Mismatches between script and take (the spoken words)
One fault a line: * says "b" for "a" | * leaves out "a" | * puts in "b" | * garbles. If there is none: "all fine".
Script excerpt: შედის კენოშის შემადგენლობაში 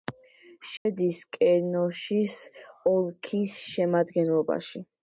* puts in "ოლქის"